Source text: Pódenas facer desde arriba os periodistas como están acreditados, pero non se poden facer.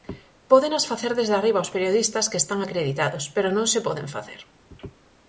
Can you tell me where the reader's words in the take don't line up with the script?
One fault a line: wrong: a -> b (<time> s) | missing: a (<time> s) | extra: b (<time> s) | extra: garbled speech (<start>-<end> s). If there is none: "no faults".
wrong: como -> que (2.3 s)